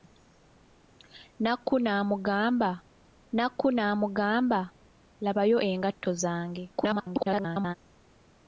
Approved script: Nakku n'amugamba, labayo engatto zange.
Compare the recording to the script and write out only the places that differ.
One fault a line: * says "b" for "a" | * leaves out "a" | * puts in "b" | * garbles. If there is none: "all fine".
* puts in "nakku n'amugamba"
* garbles